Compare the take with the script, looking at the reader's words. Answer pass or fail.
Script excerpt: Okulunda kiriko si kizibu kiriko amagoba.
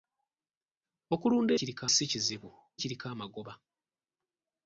pass